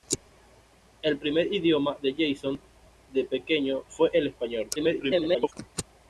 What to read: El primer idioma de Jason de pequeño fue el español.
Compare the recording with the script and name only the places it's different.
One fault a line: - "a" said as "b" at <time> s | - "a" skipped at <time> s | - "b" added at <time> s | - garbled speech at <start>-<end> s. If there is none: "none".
- garbled speech at 4.8-5.5 s